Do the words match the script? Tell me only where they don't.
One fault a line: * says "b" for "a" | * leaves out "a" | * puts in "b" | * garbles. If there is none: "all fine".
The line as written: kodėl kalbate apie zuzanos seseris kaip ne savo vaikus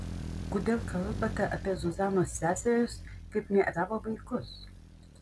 all fine